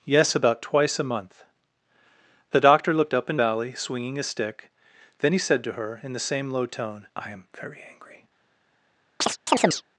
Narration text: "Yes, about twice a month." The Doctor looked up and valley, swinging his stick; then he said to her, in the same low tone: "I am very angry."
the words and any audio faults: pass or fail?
fail